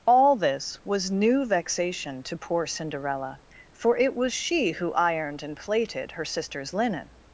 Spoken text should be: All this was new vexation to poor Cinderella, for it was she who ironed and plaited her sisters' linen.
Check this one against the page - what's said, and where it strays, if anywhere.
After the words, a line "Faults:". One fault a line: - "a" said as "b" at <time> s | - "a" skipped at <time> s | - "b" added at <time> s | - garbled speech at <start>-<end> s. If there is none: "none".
All this was new vexation to poor Cinderella, for it was she who ironed and plaited her sisters' linen.
Faults:
none